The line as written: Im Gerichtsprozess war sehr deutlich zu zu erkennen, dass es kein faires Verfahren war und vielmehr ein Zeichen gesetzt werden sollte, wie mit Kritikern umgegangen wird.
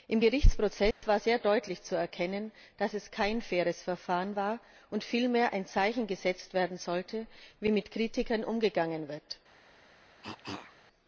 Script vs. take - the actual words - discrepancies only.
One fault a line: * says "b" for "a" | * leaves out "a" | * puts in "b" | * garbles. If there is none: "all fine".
* leaves out "zu"